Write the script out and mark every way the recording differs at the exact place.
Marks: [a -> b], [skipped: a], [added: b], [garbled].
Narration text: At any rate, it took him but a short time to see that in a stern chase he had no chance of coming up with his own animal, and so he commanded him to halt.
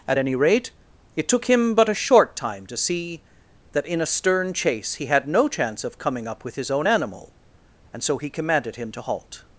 At any rate, it took him but a short time to see that in a stern chase he had no chance of coming up with his own animal, and so he commanded him to halt.